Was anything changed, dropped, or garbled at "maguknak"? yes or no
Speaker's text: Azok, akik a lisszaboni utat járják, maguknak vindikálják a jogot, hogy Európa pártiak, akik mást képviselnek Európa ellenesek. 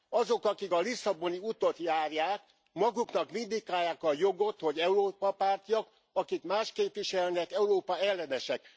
no